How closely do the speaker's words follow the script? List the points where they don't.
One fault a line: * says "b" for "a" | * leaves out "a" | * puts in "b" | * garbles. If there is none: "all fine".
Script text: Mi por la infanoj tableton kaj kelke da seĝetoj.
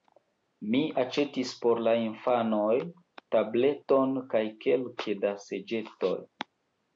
* puts in "aĉetis"